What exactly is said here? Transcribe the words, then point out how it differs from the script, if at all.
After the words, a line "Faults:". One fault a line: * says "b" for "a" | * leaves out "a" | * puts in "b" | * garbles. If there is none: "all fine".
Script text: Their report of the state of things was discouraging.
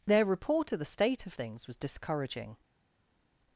Their report of the state of things was discouraging.
Faults:
all fine